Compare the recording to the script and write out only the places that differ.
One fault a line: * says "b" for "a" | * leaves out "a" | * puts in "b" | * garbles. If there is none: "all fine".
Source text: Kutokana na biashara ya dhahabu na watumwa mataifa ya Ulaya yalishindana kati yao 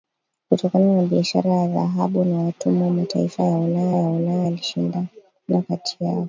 * puts in "ya Ulaya"